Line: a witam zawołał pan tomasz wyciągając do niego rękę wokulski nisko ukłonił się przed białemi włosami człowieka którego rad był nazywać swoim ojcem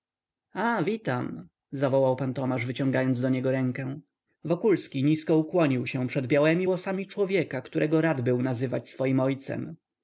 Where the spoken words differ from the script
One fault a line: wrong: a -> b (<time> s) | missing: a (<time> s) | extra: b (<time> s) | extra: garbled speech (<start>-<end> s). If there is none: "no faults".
no faults